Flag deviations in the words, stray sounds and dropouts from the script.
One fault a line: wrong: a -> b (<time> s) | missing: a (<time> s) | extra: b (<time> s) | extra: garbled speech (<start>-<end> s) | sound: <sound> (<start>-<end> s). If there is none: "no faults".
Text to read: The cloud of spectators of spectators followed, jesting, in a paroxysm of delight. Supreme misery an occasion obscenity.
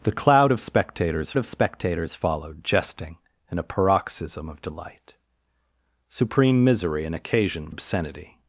no faults